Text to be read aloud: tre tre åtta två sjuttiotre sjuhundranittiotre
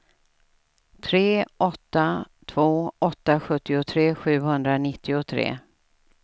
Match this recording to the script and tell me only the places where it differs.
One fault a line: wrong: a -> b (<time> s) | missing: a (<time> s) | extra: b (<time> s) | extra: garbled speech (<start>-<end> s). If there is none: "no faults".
missing: tre (1.4 s)
extra: åtta (3.0 s)